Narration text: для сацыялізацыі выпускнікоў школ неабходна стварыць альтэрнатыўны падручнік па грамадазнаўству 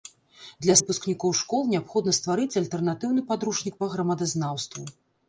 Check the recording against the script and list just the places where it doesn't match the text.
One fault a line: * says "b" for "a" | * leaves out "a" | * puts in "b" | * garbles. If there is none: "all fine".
* leaves out "сацыялізацыі"